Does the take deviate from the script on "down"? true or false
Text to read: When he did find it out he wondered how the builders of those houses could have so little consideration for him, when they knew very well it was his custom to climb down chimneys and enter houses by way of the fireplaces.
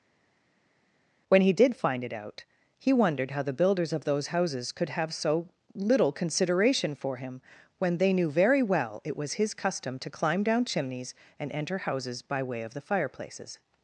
false